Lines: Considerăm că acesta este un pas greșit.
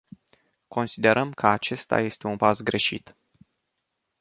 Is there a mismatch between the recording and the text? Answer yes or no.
no